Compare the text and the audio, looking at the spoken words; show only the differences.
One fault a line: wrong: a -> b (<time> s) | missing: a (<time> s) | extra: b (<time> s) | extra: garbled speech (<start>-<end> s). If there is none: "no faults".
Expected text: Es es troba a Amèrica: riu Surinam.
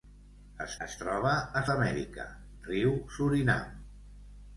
no faults